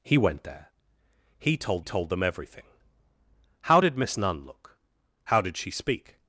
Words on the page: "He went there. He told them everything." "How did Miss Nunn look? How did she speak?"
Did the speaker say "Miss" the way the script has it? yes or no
yes